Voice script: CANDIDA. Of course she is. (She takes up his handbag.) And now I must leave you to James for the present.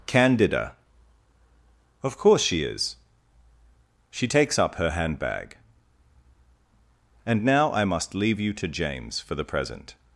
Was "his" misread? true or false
true